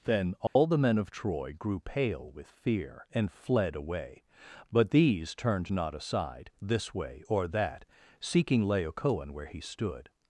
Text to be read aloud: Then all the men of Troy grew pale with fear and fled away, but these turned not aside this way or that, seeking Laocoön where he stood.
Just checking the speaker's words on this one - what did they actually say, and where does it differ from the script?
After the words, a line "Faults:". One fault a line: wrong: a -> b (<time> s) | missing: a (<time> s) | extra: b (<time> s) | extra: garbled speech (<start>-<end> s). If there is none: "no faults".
Then all the men of Troy grew pale with fear and fled away, but these turned not aside this way or that, seeking Laocoön where he stood.
Faults:
no faults